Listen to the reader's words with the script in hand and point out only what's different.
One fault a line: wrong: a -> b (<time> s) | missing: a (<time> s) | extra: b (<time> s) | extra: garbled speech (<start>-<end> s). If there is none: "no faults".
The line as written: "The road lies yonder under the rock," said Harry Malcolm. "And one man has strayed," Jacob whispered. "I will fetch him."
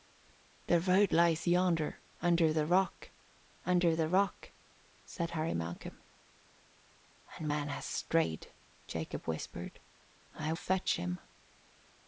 extra: under the rock (3.7 s)
missing: one (7.5 s)
missing: will (10.5 s)